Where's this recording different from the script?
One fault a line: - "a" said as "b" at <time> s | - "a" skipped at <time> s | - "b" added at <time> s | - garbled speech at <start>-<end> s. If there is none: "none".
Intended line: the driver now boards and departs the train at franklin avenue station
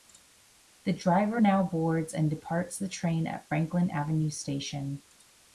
none